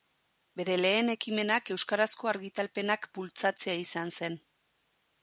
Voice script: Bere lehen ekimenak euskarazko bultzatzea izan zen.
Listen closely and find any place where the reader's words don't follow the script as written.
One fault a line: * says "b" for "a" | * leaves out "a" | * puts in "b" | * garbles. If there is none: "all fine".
* puts in "argitalpenak"